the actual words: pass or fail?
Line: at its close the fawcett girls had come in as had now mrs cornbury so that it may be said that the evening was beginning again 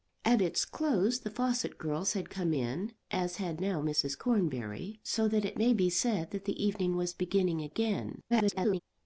fail